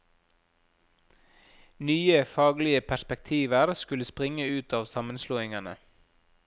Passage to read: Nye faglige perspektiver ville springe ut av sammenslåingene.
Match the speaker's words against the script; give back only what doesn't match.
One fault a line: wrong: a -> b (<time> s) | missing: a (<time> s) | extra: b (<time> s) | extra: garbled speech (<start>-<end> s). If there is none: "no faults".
wrong: ville -> skulle (3.7 s)